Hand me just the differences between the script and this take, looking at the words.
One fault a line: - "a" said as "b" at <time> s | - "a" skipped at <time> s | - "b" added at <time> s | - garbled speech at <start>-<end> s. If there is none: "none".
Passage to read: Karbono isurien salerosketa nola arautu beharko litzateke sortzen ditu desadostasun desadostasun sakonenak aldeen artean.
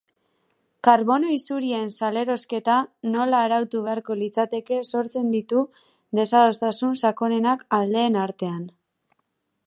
- "desadostasun" skipped at 6.9 s